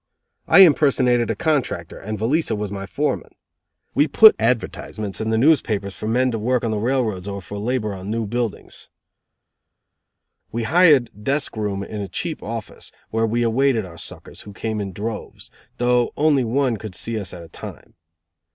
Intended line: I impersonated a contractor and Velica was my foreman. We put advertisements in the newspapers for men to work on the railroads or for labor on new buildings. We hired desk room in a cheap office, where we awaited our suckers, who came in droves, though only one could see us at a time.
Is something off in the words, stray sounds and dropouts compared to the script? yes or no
no